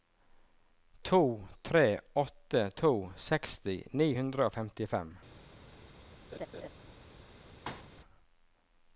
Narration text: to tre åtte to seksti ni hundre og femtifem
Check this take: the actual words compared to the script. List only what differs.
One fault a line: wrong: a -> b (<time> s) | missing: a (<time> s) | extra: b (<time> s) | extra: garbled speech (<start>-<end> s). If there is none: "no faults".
no faults